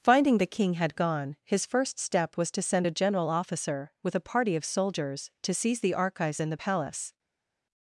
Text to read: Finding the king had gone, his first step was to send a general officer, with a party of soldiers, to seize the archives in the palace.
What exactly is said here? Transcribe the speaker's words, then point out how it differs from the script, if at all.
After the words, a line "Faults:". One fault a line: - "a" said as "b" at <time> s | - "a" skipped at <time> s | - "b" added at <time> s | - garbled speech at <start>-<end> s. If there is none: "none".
Finding the king had gone, his first step was to send a general officer, with a party of soldiers, to seize the archives in the palace.
Faults:
none